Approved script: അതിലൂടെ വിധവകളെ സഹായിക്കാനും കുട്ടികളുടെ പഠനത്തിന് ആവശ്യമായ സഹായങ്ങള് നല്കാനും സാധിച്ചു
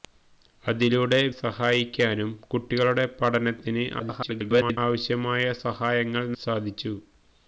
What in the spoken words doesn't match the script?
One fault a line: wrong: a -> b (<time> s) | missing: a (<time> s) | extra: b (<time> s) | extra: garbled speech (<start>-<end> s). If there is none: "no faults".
missing: വിധവകളെ (1.2 s)
extra: garbled speech (4.0-4.8 s)
missing: നല്കാനും (6.3 s)